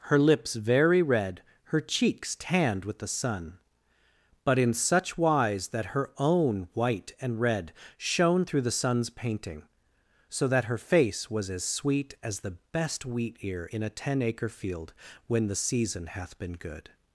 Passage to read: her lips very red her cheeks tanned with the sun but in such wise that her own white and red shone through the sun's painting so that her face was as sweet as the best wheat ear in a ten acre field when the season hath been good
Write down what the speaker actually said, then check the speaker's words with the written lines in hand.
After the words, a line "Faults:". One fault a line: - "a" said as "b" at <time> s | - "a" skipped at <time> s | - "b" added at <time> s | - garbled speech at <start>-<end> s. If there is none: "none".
her lips very red her cheeks tanned with the sun but in such wise that her own white and red shone through the sun's painting so that her face was as sweet as the best wheat ear in a ten acre field when the season hath been good
Faults:
none